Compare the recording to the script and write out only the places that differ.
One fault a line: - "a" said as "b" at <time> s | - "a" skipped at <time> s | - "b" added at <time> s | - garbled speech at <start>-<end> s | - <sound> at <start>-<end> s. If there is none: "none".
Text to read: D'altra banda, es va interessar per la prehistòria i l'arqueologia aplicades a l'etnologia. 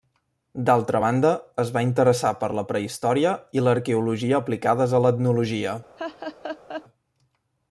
- laugh at 6.0-6.8 s